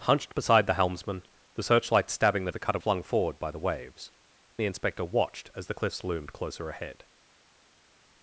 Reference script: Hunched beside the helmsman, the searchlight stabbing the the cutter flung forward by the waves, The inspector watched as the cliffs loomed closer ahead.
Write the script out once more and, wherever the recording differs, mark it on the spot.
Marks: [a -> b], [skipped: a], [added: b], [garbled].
Hunched beside the helmsman, the searchlight stabbing the the cutter flung forward by the waves, The inspector watched as the cliffs loomed closer ahead.